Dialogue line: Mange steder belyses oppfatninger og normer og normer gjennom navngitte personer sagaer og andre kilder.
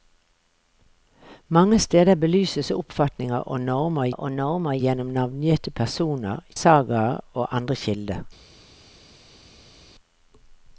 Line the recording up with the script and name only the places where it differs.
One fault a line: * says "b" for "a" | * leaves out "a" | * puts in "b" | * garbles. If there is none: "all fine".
all fine